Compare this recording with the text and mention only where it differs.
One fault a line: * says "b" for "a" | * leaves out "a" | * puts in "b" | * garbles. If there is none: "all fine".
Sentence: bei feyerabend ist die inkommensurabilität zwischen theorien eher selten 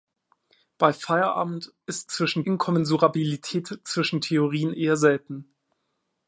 * says "zwischen" for "die"